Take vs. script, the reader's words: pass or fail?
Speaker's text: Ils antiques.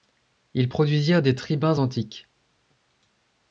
fail